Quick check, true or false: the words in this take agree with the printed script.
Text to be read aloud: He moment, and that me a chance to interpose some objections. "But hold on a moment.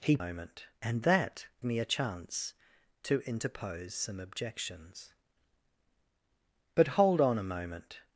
true